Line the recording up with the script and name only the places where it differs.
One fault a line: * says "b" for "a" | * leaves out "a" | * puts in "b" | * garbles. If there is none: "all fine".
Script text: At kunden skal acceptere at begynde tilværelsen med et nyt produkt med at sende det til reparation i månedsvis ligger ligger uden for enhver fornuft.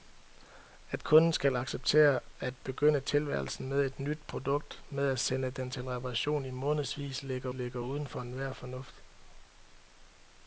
all fine